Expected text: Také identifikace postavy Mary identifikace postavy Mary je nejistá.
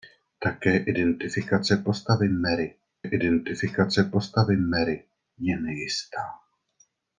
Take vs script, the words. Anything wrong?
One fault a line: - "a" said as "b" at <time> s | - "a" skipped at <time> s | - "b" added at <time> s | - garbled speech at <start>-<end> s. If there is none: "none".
none